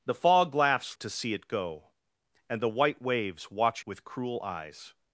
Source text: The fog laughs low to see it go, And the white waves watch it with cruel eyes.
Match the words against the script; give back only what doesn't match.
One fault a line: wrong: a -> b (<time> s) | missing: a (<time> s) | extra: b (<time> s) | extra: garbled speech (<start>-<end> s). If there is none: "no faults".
missing: low (1.0 s)
missing: it (3.9 s)